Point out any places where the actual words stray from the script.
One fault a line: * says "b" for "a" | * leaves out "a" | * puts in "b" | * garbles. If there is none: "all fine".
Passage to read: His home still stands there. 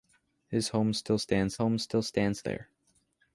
* puts in "home still stands"